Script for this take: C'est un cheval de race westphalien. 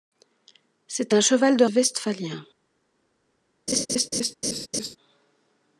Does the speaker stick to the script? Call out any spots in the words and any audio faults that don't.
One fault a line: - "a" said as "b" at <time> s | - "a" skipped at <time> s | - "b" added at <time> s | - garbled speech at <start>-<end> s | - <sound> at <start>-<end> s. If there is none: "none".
- "race" skipped at 1.6 s
- laugh at 3.7-5.0 s